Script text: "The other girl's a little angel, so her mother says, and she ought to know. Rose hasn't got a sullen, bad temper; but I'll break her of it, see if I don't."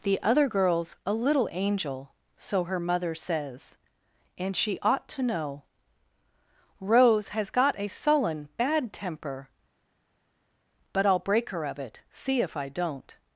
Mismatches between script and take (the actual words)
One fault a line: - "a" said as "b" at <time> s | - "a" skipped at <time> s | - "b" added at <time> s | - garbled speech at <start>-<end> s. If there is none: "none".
- "hasn't" said as "has" at 7.3 s